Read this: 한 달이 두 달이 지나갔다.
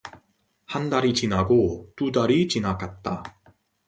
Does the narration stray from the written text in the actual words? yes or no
yes